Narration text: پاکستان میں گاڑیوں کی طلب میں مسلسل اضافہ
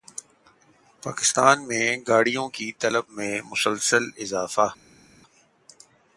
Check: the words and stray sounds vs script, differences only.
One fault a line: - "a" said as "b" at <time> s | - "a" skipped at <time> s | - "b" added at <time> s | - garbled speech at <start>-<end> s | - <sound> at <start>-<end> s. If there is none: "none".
none